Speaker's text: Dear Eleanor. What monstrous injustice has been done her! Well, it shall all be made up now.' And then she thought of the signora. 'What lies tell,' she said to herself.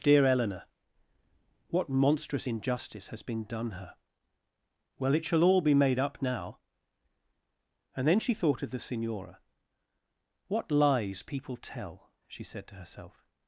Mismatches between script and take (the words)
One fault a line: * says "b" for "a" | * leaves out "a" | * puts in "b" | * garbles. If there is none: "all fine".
* puts in "people"